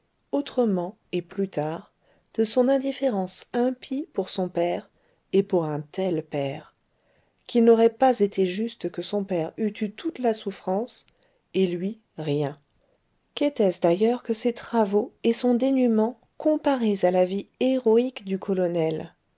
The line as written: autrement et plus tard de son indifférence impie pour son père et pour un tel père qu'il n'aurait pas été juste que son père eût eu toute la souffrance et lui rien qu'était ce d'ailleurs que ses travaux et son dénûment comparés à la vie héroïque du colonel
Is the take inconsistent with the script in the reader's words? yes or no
no